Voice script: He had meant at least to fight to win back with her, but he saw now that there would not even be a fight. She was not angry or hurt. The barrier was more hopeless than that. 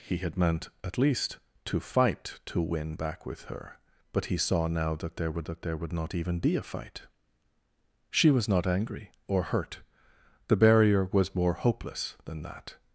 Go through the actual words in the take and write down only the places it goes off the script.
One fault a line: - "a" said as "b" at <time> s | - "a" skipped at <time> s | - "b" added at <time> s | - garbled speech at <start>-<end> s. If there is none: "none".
- "that there would" added at 5.4 s